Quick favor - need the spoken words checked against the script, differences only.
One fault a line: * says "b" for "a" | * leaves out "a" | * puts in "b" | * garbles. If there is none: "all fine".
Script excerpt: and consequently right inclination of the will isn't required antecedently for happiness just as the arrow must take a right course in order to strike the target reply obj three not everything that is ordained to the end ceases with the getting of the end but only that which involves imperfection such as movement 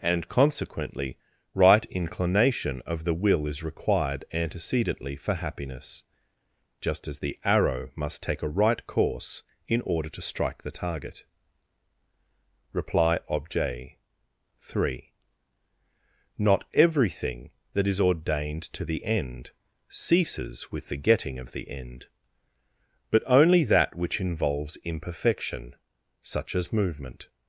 * says "is" for "isn't"